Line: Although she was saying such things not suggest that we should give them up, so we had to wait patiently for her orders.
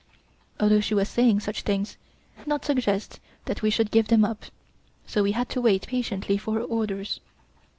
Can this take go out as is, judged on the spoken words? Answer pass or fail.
pass